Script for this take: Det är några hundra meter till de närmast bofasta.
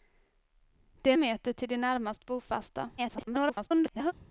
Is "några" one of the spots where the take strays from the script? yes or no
yes